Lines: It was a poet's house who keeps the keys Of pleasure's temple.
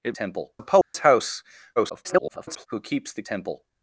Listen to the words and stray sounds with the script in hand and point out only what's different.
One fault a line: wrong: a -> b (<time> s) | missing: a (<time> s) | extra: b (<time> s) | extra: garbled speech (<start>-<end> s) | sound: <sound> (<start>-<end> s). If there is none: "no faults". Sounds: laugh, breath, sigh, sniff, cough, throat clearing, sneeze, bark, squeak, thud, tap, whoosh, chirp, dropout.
wrong: was -> temple (0.1 s)
sound: dropout (0.8-0.9 s)
extra: garbled speech (1.8-2.7 s)
missing: keys Of pleasure's (3.2 s)